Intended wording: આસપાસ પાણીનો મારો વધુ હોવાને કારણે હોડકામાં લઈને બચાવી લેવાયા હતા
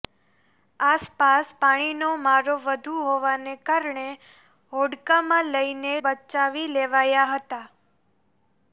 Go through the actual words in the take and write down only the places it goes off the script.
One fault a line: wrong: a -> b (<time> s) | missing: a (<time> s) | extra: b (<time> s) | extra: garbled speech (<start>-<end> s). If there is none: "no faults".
no faults